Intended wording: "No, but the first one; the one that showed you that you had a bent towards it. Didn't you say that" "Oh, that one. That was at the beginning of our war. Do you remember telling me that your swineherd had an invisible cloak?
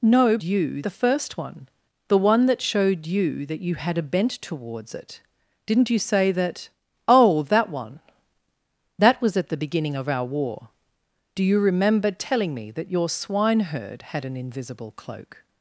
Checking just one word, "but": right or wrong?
wrong